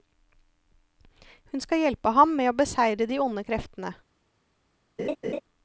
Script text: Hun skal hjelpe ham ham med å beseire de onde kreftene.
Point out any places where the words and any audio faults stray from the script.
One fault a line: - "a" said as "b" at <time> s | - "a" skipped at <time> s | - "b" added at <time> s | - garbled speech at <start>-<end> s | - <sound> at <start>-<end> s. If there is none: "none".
- "ham" skipped at 2.4 s
- laugh at 5.0-5.4 s